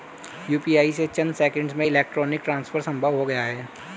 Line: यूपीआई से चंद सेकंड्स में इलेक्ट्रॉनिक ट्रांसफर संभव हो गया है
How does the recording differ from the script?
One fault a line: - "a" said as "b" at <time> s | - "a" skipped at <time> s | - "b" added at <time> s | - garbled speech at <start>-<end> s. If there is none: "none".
none